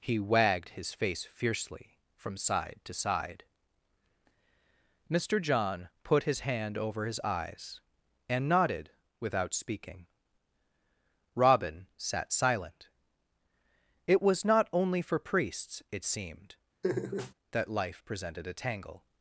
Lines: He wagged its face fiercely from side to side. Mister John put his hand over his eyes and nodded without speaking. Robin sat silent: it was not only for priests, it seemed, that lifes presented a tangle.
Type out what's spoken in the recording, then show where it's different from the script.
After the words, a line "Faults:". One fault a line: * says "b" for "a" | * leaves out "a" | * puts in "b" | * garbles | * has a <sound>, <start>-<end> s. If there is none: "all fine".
He wagged his face fiercely from side to side. Mister John put his hand over his eyes and nodded without speaking. Robin sat silent: it was not only for priests, it seemed, that life presented a tangle.
Faults:
* says "his" for "its"
* has a laugh, 16.8-17.3 s
* says "life" for "lifes"